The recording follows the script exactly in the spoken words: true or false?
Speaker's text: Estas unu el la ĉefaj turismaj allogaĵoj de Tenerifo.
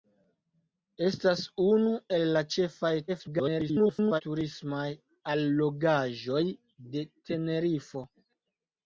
false